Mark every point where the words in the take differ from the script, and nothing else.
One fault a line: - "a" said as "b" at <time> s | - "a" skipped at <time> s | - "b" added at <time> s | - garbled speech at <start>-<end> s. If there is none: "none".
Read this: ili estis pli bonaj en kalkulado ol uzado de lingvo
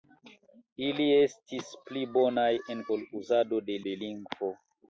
- "kalkulado" skipped at 2.8 s
- "de" added at 3.9 s